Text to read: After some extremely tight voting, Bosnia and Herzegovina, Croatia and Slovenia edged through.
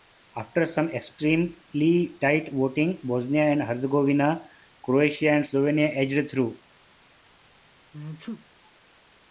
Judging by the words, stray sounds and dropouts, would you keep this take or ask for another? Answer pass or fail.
fail